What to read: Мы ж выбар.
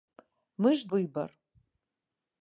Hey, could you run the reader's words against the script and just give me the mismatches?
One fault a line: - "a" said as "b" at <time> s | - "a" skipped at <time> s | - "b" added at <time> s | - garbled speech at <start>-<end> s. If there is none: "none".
none